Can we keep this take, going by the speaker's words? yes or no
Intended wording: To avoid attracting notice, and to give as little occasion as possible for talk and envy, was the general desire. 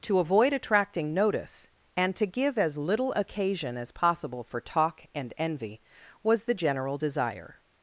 yes